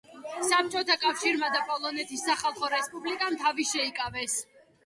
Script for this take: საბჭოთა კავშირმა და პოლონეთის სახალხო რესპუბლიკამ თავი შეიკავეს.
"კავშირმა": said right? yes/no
yes